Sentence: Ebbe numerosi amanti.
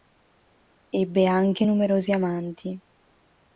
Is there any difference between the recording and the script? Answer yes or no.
yes